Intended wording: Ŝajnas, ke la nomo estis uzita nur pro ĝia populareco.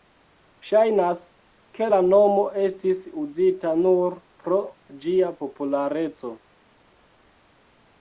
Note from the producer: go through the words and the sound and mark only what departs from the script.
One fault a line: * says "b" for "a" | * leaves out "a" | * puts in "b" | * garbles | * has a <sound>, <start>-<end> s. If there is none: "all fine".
all fine